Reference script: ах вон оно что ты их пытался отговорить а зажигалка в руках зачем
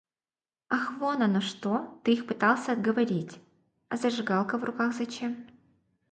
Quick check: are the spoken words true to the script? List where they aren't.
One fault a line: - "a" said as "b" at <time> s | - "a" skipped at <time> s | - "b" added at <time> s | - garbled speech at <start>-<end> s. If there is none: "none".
none